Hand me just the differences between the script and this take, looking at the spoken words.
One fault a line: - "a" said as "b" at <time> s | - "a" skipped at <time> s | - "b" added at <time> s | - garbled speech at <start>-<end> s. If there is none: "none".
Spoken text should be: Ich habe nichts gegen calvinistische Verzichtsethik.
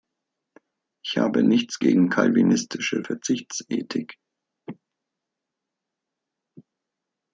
none